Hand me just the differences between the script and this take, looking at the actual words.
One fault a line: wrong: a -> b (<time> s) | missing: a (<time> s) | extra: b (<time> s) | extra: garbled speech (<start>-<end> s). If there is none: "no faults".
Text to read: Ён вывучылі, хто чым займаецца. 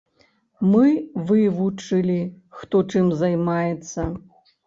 wrong: Ён -> Мы (0.7 s)